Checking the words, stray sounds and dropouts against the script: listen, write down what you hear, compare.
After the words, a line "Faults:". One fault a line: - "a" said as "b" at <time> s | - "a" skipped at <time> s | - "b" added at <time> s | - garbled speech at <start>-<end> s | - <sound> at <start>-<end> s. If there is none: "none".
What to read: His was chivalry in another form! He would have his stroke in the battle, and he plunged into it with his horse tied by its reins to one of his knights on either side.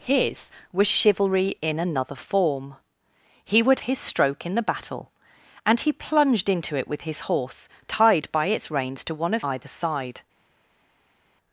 His was chivalry in another form! He would his stroke in the battle, and he plunged into it with his horse tied by its reins to one of either side.
Faults:
- "have" skipped at 3.8 s
- "his knights on" skipped at 9.4 s